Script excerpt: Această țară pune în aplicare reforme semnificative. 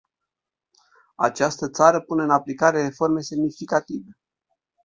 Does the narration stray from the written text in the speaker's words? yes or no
no